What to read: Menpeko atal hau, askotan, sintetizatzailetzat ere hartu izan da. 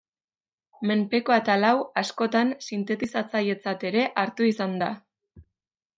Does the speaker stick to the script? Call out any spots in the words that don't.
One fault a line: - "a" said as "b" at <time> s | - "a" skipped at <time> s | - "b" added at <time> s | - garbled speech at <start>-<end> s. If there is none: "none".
none